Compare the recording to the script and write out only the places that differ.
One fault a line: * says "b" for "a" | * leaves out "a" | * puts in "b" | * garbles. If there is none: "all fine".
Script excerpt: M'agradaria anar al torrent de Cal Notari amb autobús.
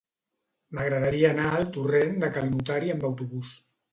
all fine